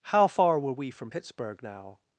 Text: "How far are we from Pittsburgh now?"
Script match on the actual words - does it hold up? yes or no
no